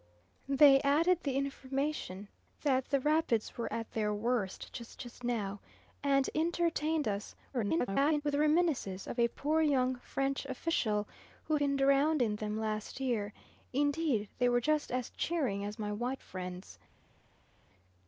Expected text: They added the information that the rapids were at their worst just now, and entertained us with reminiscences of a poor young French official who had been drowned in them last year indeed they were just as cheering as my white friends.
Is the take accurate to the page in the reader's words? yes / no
no